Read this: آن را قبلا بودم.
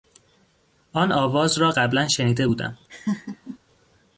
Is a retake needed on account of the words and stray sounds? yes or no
yes